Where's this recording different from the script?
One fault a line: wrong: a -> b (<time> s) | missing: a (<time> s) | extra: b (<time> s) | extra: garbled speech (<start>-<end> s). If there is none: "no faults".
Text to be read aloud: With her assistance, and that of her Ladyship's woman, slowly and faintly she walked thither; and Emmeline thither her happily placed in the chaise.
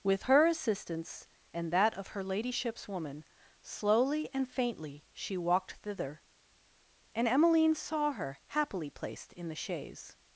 wrong: thither -> saw (7.8 s)